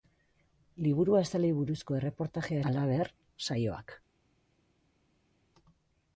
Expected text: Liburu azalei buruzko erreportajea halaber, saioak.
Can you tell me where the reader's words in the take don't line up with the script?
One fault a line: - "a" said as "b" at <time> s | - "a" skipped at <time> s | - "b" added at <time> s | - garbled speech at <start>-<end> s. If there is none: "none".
none